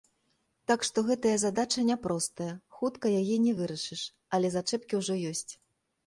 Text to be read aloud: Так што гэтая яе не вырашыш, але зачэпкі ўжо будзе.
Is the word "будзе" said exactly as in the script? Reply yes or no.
no